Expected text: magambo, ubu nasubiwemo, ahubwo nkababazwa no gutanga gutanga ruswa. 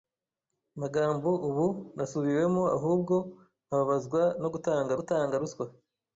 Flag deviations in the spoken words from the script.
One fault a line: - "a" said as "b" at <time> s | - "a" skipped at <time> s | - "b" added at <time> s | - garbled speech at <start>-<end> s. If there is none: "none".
none